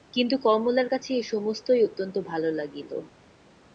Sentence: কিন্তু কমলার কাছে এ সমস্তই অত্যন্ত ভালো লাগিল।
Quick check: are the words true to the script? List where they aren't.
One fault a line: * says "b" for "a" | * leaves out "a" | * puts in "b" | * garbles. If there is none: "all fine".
all fine